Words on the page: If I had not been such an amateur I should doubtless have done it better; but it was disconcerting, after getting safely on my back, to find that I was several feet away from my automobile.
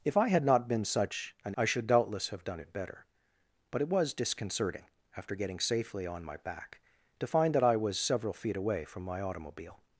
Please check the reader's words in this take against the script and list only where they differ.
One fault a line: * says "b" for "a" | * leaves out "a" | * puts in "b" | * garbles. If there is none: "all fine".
* leaves out "amateur"